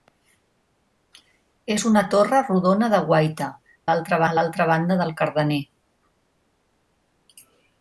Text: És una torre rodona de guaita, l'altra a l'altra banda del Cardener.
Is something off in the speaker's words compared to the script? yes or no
no